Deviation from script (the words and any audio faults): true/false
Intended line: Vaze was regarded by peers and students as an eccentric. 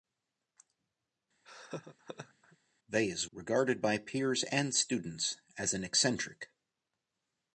true